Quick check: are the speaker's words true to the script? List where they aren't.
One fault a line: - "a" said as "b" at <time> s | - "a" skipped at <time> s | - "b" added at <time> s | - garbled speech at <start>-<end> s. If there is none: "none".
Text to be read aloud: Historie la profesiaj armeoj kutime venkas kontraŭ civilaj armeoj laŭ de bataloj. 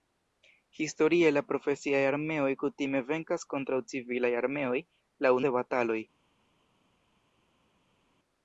none